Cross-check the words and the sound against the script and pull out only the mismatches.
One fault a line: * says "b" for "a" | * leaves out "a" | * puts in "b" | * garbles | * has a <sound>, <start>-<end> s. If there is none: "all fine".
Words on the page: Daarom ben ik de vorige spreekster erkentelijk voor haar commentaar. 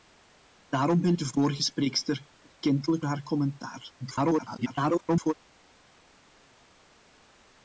* leaves out "ik"
* leaves out "voor"
* garbles